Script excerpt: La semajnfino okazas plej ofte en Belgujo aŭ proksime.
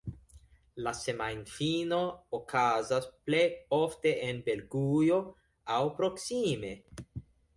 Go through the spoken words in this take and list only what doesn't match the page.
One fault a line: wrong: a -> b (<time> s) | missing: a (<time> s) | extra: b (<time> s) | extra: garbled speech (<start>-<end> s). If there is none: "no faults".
no faults